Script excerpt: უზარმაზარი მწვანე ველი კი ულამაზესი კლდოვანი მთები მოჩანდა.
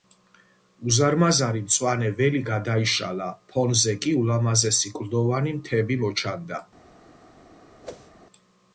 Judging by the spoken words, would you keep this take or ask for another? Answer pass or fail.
fail